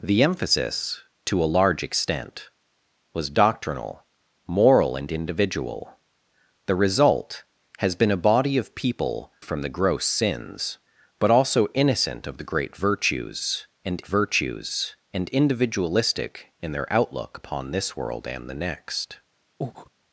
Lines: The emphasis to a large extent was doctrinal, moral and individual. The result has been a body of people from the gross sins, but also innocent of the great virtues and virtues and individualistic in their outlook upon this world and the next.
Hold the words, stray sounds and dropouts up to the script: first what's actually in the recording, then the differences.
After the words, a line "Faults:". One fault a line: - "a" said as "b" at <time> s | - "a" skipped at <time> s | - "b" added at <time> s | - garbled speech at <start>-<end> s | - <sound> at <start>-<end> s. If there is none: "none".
The emphasis to a large extent was doctrinal, moral and individual. The result has been a body of people from the gross sins, but also innocent of the great virtues and virtues and individualistic in their outlook upon this world and the next.
Faults:
- breath at 19.6-19.9 s